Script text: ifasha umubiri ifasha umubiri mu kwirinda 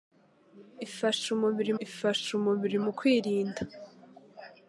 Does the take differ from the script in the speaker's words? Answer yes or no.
no